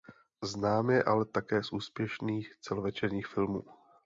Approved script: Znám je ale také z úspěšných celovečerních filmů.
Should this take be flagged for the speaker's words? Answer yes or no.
no